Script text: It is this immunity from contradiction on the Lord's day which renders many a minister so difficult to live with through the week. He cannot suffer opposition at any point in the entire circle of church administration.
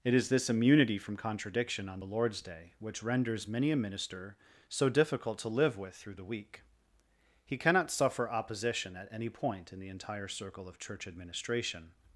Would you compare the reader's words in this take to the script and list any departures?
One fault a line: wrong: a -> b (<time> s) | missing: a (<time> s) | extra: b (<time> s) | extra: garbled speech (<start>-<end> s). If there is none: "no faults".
no faults